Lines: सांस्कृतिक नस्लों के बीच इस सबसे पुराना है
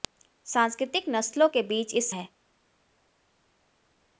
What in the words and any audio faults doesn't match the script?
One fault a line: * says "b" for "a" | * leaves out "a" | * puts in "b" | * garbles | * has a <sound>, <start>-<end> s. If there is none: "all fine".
* leaves out "सबसे पुराना"